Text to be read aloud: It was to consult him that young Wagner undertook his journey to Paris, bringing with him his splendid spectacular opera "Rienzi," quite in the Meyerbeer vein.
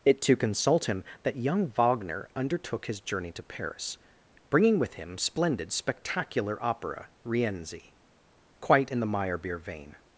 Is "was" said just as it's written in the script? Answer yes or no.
no